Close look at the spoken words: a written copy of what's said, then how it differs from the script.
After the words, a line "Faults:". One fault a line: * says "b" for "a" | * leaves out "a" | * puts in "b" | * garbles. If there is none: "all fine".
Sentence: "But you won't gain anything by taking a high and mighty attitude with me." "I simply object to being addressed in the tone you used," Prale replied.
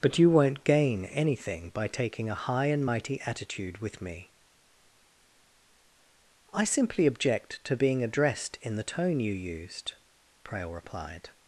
"But you won't gain anything by taking a high and mighty attitude with me." "I simply object to being addressed in the tone you used," Prale replied.
Faults:
all fine